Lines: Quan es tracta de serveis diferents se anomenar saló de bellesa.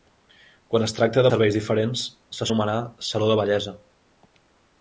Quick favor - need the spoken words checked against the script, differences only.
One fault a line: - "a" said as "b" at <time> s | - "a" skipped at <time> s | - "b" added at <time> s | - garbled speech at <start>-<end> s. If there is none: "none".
none